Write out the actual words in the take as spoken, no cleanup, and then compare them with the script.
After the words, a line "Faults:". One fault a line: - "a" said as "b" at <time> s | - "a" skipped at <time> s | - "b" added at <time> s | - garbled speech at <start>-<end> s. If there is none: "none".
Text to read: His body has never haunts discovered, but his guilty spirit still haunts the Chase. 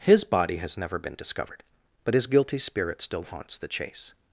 His body has never been discovered, but his guilty spirit still haunts the Chase.
Faults:
- "haunts" said as "been" at 1.0 s